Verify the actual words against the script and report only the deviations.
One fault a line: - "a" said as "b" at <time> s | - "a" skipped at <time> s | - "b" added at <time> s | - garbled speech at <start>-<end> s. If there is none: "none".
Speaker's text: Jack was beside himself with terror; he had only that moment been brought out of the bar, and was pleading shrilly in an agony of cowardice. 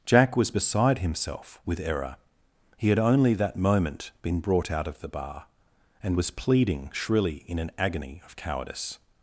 - "terror" said as "error" at 1.8 s